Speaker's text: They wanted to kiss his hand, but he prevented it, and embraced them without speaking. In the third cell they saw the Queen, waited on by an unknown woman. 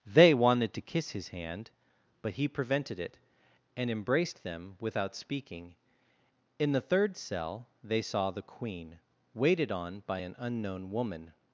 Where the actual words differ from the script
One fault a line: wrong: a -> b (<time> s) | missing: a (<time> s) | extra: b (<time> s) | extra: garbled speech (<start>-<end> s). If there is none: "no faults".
no faults